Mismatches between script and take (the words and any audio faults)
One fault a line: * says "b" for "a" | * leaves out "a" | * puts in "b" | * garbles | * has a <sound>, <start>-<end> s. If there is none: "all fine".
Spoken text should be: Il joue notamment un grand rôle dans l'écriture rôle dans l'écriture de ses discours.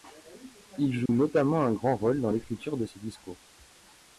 * has a dropout, 1.1-1.1 s
* leaves out "rôle dans l'écriture"